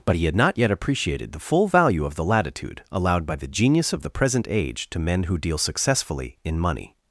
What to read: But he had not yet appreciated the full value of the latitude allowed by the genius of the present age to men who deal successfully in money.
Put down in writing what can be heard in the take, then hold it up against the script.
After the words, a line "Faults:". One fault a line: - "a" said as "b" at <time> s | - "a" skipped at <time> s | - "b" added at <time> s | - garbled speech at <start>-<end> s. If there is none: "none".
But he had not yet appreciated the full value of the latitude allowed by the genius of the present age to men who deal successfully in money.
Faults:
none